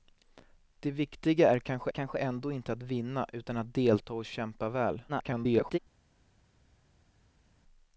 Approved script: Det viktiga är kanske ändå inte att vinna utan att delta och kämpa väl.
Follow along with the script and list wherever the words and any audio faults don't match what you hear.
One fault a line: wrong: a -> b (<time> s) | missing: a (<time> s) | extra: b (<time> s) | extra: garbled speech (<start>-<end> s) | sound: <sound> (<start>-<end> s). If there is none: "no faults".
extra: kanske (1.9 s)
extra: garbled speech (5.1-5.8 s)